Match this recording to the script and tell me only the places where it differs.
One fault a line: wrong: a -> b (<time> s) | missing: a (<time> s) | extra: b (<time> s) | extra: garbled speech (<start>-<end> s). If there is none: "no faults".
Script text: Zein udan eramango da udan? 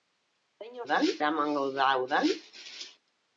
no faults